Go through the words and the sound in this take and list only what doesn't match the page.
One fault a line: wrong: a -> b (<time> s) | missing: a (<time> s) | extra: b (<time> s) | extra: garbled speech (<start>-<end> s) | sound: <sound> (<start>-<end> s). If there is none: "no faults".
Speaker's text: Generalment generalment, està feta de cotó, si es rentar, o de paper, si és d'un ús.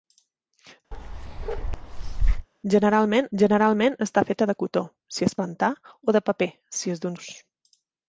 sound: bark (0.9-2.5 s)